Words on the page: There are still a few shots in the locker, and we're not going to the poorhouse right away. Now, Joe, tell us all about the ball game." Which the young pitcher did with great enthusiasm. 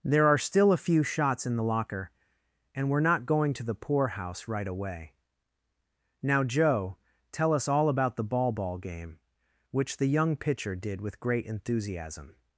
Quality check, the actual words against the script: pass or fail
fail